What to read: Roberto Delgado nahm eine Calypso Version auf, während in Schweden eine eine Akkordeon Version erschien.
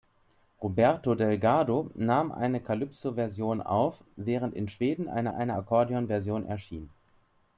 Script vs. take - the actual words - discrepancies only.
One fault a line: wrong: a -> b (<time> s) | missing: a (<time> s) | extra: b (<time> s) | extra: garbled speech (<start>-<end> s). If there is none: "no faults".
no faults